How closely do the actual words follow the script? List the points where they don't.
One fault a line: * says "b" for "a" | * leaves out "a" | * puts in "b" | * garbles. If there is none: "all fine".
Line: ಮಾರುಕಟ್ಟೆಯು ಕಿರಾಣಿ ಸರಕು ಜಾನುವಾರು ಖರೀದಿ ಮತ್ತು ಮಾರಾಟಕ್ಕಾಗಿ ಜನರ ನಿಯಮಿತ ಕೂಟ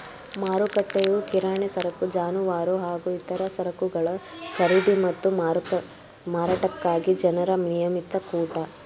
* puts in "ಹಾಗೂ ಇತರ ಸರಕುಗಳ"